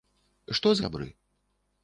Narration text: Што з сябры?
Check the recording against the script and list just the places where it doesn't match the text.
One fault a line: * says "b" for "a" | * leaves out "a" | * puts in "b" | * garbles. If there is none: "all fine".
all fine